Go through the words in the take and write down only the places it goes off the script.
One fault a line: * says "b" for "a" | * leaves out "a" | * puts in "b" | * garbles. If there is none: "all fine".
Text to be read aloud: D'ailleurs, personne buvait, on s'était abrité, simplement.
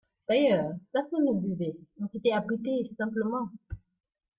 * puts in "ne"